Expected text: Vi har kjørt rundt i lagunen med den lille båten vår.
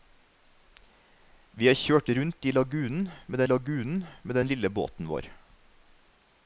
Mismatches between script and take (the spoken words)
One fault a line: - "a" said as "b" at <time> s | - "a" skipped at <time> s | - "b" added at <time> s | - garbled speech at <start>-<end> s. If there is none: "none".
- "lagunen med" added at 3.5 s